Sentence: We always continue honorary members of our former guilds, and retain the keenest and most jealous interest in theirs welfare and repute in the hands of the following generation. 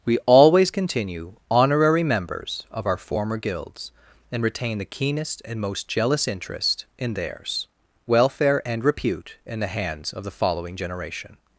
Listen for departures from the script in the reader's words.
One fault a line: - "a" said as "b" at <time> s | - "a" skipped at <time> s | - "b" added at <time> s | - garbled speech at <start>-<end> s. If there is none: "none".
none